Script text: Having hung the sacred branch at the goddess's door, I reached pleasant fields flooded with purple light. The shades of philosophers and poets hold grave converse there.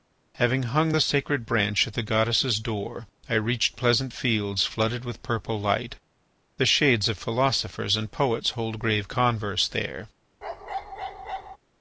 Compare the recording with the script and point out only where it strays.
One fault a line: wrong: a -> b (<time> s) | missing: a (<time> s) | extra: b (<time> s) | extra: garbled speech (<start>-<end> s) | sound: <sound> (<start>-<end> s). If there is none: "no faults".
sound: bark (10.4-11.6 s)